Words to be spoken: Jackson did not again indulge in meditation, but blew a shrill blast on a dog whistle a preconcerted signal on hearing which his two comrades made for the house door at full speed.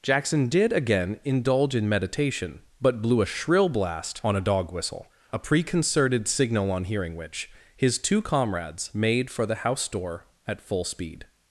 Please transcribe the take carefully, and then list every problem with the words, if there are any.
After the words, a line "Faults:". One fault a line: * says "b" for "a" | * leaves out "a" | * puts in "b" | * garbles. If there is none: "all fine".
Jackson did again indulge in meditation, but blew a shrill blast on a dog whistle a preconcerted signal on hearing which his two comrades made for the house door at full speed.
Faults:
* leaves out "not"